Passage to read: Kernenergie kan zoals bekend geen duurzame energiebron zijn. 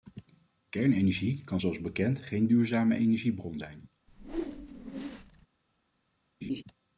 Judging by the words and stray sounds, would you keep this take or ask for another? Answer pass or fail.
fail